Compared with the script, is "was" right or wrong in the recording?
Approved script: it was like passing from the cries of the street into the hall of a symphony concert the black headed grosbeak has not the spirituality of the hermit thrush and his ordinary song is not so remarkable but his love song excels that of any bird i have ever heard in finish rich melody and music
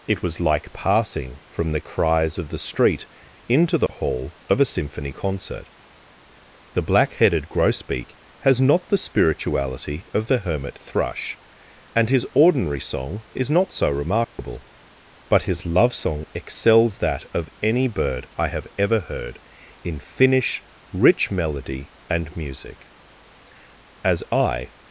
right